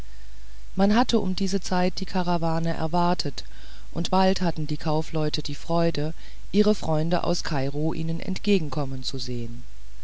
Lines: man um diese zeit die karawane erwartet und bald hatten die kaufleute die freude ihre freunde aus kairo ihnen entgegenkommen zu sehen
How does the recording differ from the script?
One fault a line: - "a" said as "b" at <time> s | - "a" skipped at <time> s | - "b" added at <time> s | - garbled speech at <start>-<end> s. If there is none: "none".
- "hatte" added at 0.9 s